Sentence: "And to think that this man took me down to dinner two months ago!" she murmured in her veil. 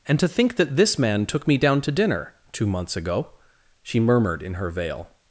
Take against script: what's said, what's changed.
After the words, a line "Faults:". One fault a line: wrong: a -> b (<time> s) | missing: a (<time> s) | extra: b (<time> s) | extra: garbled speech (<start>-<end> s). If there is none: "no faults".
"And to think that this man took me down to dinner two months ago!" she murmured in her veil.
Faults:
no faults